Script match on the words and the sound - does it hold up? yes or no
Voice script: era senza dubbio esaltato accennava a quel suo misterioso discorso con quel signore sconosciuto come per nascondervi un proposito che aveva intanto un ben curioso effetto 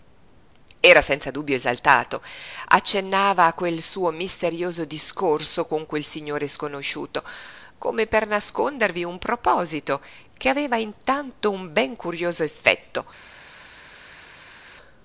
yes